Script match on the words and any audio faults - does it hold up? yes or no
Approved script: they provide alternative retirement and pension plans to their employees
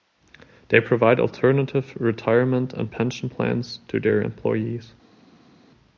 yes